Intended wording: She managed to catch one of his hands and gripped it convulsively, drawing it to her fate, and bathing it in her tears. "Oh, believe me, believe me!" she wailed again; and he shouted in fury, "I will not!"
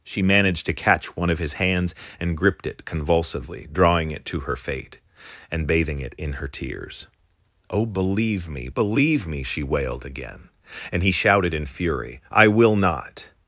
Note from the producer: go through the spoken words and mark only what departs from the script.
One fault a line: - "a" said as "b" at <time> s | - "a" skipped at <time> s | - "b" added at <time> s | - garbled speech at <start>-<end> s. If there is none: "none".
none